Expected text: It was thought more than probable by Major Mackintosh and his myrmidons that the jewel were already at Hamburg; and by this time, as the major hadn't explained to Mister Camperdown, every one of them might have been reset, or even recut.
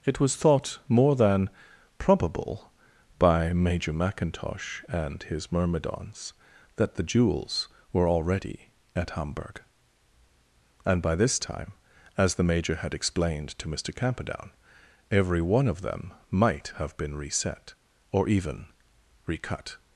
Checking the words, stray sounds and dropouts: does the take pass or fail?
fail